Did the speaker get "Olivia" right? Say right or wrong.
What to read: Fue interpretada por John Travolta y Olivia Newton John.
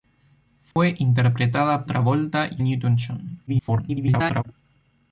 wrong